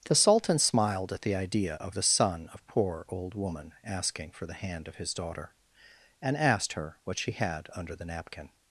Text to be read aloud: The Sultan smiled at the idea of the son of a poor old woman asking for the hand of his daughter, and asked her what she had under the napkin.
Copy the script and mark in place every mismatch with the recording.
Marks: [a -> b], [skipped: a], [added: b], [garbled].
The Sultan smiled at the idea of the son of [skipped: a] poor old woman asking for the hand of his daughter, and asked her what she had under the napkin.